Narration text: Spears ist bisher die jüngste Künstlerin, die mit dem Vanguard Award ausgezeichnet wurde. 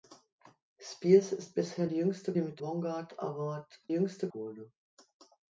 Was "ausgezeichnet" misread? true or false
true